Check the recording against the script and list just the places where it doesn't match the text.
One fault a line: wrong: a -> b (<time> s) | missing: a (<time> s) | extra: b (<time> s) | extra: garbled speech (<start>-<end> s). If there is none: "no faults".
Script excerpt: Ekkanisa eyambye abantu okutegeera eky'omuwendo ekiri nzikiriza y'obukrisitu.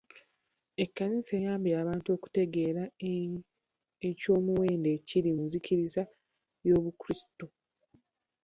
no faults